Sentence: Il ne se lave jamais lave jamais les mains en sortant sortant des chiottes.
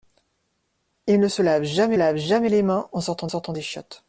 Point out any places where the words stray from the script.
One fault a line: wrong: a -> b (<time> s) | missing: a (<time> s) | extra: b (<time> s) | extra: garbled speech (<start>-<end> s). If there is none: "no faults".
no faults